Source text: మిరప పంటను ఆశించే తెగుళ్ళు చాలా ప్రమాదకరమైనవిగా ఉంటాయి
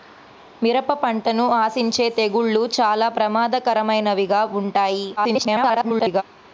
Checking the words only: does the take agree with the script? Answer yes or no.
no